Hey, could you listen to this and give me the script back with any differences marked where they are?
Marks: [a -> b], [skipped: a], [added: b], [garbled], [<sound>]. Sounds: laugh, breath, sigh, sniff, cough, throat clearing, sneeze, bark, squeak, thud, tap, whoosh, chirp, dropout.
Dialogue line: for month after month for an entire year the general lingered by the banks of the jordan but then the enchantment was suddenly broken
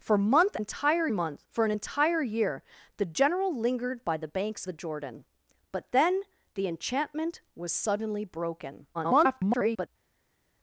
for month [after -> entire] month for an entire year the general lingered by the banks [skipped: of] the jordan but then the enchantment was suddenly broken [garbled]